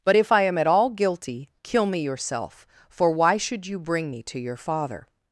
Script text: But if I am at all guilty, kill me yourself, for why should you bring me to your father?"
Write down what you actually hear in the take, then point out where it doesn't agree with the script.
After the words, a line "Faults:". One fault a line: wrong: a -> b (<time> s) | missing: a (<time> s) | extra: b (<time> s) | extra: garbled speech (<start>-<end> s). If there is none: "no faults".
But if I am at all guilty, kill me yourself, for why should you bring me to your father?"
Faults:
no faults